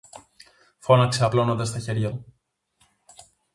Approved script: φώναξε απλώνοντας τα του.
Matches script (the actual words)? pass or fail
fail